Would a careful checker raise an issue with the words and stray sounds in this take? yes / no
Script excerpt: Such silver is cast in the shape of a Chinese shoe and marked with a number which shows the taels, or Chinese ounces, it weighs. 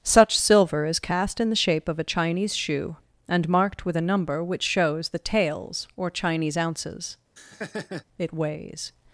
yes